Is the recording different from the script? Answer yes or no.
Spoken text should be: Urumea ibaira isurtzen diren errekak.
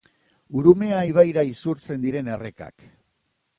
no